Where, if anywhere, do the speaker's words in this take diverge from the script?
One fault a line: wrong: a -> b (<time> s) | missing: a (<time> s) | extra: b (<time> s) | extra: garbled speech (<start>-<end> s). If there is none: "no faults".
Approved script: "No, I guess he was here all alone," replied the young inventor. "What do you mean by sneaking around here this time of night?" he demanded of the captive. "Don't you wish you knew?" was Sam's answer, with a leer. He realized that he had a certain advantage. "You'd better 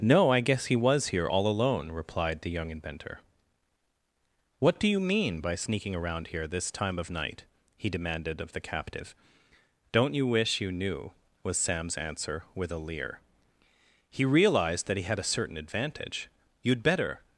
no faults